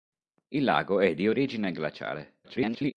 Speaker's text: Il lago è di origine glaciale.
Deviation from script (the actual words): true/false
true